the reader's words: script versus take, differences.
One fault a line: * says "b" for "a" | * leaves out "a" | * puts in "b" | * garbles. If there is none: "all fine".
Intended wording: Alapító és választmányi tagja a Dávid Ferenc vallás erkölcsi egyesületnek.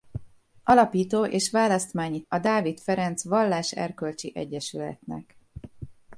* leaves out "tagja"